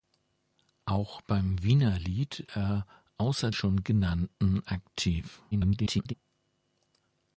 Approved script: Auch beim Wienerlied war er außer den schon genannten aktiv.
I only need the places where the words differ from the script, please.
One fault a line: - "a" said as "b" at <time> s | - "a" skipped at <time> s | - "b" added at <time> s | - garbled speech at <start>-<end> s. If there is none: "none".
- "war" skipped at 2.5 s
- "den" skipped at 3.5 s
- garbled speech at 5.5-6.1 s